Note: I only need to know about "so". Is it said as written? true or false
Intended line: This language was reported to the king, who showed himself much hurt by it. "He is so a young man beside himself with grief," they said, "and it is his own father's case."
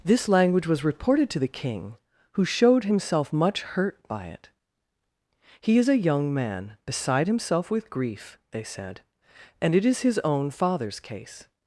false